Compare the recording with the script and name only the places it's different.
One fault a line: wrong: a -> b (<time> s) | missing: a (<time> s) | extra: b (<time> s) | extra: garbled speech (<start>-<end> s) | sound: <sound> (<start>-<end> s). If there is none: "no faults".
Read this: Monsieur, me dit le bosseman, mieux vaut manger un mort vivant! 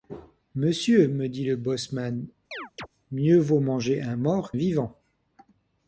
sound: chirp (2.5-2.9 s)